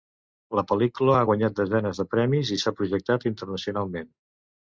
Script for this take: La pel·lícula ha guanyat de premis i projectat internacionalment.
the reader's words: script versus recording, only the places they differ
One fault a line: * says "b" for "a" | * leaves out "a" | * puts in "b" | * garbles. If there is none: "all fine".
* puts in "desenes"
* puts in "s'ha"